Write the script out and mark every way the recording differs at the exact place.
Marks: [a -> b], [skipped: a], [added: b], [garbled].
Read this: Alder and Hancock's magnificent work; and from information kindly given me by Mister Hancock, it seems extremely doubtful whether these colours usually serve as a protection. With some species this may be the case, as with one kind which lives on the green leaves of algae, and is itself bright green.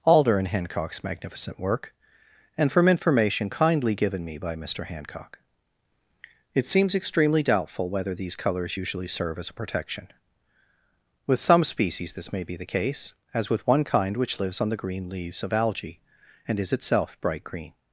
Alder and Hancock's magnificent work; and from information kindly given me by Mister Hancock, it seems extremely doubtful whether these colours usually serve as a protection. With some species this may be the case, as with one kind which lives on the green leaves of algae, and is itself bright green.